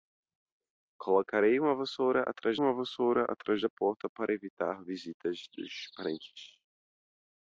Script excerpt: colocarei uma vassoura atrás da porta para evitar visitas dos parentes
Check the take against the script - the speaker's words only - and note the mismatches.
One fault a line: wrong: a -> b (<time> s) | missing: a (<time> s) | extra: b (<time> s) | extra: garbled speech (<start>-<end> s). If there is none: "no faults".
extra: uma vassoura atrás (2.6 s)